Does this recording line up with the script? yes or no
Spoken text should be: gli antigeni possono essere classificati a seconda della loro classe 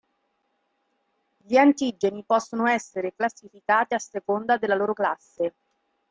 yes